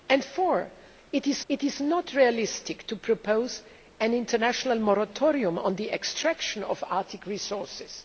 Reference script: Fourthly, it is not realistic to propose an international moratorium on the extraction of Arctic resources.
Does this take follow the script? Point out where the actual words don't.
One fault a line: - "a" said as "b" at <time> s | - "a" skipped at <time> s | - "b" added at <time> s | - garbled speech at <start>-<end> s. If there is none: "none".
- "it is" added at 1.5 s